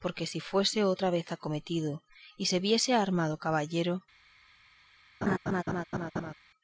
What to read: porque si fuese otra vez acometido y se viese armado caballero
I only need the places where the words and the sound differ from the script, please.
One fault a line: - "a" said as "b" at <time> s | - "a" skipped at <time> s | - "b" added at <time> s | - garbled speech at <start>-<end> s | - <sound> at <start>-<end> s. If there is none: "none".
- laugh at 5.2-6.3 s